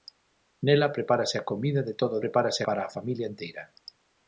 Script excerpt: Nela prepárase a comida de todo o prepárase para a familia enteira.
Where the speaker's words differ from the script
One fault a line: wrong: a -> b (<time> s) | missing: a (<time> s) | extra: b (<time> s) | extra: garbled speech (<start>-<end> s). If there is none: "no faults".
no faults